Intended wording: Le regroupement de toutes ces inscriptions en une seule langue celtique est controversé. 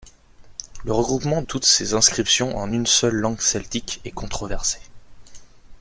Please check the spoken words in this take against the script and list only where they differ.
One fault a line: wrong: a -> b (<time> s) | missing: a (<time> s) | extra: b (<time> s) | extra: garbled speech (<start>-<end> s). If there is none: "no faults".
missing: de (1.4 s)